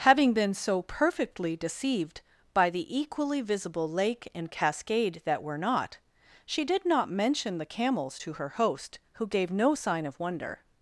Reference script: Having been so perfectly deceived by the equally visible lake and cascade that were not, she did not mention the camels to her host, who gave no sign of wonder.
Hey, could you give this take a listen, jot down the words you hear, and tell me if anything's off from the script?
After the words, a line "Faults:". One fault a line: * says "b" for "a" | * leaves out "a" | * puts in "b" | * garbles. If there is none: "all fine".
Having been so perfectly deceived by the equally visible lake and cascade that were not, she did not mention the camels to her host, who gave no sign of wonder.
Faults:
all fine